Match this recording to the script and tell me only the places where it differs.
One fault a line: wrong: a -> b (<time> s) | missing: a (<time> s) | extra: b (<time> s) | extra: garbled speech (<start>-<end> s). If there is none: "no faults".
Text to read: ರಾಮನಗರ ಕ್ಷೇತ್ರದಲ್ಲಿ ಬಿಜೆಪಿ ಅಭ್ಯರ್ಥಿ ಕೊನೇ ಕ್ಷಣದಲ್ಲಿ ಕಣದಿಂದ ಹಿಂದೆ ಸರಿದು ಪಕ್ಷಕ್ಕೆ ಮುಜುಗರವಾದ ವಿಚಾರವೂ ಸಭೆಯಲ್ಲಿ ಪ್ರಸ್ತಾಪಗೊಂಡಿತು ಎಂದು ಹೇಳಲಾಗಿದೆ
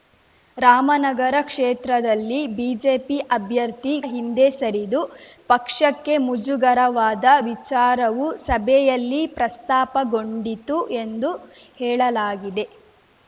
missing: ಕೊನೇ ಕ್ಷಣದಲ್ಲಿ ಕಣದಿಂದ (3.9 s)